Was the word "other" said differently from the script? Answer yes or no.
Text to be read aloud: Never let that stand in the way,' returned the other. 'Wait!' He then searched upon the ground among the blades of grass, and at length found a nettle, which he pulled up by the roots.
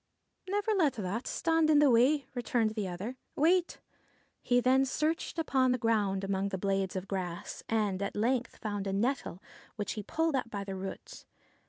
no